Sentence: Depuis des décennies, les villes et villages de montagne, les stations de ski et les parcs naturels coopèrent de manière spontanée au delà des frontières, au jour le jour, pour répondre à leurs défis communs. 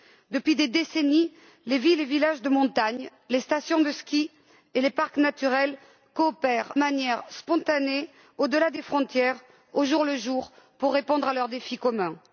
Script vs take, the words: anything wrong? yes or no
yes